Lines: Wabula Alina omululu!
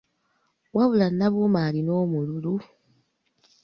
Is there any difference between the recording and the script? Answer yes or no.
yes